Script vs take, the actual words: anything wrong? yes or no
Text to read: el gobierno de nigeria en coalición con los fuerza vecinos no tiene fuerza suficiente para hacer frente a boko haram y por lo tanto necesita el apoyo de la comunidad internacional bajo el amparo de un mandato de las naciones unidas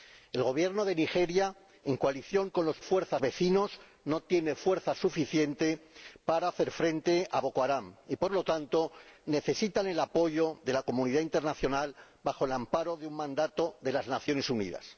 no